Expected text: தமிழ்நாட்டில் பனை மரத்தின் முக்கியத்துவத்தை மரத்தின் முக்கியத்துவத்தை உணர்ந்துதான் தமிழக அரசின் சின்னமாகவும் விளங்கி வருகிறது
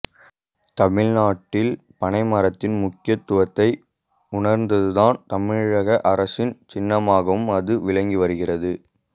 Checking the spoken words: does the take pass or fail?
fail